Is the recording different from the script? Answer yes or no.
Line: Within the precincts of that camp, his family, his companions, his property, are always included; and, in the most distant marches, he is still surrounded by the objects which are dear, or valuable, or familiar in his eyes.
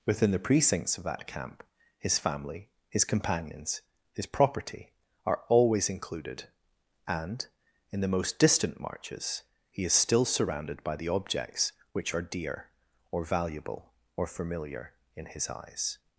no